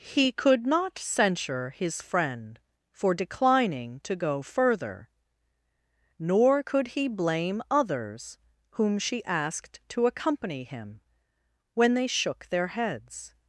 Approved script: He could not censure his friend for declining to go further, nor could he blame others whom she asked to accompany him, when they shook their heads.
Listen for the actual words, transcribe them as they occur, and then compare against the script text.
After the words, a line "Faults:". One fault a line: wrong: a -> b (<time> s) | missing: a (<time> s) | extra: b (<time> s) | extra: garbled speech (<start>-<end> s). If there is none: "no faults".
He could not censure his friend for declining to go further, nor could he blame others whom she asked to accompany him, when they shook their heads.
Faults:
no faults